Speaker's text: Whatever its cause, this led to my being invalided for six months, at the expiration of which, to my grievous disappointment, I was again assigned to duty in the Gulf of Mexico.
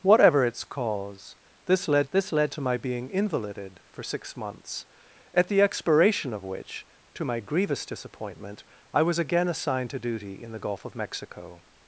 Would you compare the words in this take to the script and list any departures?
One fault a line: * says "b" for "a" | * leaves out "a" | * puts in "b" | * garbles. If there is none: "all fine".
* puts in "this led"